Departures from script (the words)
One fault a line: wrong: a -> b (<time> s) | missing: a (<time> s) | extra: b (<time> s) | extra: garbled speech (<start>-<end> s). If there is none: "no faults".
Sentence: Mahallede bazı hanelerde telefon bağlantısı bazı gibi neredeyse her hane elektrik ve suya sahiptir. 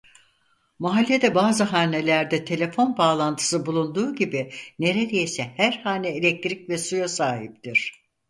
wrong: bazı -> bulunduğu (3.7 s)